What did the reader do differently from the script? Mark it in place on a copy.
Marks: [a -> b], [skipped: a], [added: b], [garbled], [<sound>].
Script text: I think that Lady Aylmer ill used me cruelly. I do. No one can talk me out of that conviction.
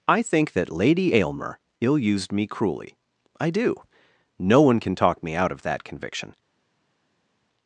I think that Lady Aylmer ill used me cruelly. I do. No one can talk me out of that conviction.